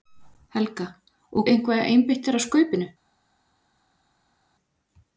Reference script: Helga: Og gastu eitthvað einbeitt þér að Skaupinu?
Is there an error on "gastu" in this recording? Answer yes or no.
yes